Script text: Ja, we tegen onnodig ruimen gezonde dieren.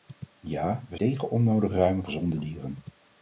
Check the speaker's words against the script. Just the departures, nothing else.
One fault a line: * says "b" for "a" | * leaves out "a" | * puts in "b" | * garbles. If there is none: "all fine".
all fine